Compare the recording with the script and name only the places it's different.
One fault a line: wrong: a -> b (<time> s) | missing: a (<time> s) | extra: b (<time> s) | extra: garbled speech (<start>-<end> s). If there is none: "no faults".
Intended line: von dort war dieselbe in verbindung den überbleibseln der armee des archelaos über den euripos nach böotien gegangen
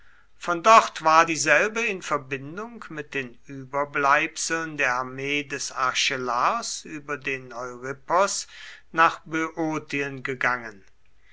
extra: mit (2.9 s)